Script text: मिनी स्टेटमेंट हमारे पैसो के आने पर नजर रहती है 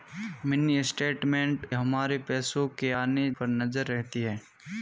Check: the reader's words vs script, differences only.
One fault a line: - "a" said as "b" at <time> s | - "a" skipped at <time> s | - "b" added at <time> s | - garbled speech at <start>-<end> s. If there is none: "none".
none